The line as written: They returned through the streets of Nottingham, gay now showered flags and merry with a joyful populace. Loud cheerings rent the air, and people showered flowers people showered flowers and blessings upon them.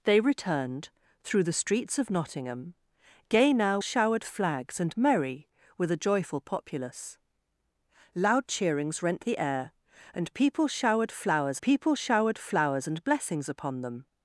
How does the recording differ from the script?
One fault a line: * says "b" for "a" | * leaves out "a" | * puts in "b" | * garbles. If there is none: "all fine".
all fine